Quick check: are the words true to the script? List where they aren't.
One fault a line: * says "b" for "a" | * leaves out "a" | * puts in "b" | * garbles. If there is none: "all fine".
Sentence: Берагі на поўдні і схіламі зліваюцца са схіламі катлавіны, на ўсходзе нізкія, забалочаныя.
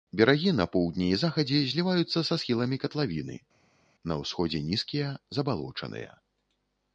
* says "захадзе" for "схіламі"